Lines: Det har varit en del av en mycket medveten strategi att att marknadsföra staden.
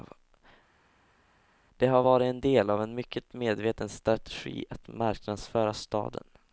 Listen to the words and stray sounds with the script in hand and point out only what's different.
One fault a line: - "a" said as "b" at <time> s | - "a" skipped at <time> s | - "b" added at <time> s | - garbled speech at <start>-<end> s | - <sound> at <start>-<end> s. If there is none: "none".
- "att" skipped at 4.9 s